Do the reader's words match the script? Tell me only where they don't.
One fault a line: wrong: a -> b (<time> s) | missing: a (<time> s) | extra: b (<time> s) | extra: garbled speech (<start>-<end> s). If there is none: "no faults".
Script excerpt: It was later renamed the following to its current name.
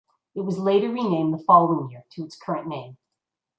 extra: year (1.9 s)